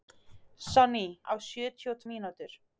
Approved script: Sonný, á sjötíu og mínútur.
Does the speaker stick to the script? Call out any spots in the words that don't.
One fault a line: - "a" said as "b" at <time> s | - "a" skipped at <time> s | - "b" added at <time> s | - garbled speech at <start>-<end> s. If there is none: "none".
none